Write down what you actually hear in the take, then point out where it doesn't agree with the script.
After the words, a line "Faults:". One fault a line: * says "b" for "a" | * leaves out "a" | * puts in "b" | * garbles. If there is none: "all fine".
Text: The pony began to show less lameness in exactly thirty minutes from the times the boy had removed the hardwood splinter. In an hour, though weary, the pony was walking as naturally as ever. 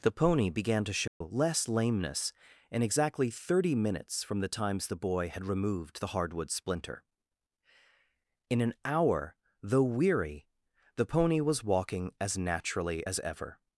The pony began to show less lameness in exactly thirty minutes from the times the boy had removed the hardwood splinter. In an hour, though weary, the pony was walking as naturally as ever.
Faults:
all fine